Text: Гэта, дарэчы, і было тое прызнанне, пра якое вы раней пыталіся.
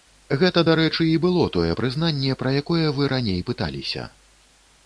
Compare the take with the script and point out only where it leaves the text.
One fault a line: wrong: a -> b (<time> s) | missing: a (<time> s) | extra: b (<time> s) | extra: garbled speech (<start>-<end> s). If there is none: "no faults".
no faults